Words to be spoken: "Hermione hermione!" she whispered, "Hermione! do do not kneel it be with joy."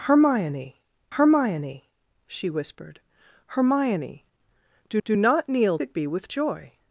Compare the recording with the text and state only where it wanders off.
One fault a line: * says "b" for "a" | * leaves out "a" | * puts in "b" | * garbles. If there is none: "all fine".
all fine